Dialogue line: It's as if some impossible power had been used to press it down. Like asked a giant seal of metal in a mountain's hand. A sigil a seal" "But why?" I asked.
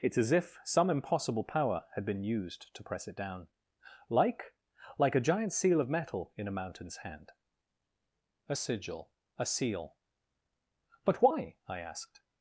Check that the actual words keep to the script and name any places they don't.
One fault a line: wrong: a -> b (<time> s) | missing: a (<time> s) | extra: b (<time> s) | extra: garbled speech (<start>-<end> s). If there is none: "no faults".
wrong: asked -> like (5.0 s)